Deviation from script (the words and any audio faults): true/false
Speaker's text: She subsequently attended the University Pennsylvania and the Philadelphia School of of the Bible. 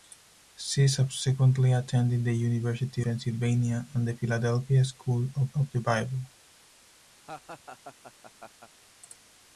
true